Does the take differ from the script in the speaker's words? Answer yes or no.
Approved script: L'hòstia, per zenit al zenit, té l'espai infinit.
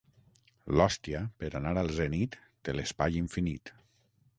yes